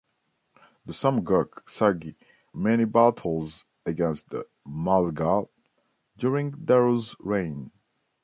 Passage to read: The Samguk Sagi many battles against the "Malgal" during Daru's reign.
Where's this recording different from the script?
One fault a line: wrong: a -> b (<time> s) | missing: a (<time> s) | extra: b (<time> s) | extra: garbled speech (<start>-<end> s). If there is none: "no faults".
no faults